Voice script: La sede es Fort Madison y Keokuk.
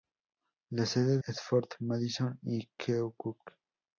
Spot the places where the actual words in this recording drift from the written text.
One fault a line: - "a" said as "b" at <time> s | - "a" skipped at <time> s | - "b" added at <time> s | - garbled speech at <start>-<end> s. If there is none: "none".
none